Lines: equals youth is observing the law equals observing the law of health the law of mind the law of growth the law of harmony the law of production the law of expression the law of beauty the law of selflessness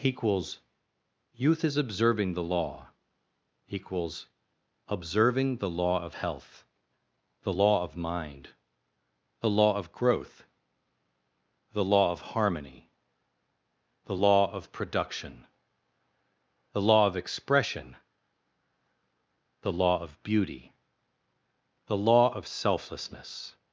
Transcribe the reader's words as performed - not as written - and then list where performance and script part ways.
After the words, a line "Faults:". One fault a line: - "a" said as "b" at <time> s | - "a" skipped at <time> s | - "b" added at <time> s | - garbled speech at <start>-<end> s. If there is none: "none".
equals youth is observing the law equals observing the law of health the law of mind the law of growth the law of harmony the law of production the law of expression the law of beauty the law of selflessness
Faults:
none